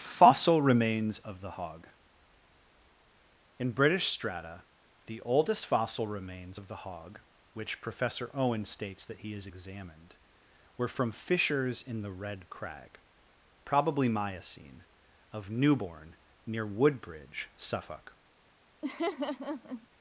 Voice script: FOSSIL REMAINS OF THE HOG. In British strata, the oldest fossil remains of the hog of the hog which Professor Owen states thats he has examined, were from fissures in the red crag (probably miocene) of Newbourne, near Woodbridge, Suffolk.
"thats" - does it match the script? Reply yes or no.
no